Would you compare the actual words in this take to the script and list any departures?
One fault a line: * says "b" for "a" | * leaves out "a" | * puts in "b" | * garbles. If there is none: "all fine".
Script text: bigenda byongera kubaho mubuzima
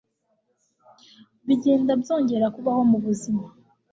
all fine